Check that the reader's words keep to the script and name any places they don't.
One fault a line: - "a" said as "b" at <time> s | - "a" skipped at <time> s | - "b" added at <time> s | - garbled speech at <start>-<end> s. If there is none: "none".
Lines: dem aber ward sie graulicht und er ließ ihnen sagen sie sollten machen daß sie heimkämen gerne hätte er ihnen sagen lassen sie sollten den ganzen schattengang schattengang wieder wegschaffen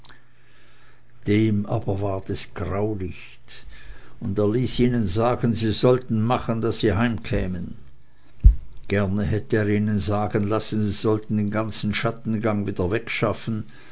- "sie" said as "es" at 2.3 s
- "schattengang" skipped at 12.7 s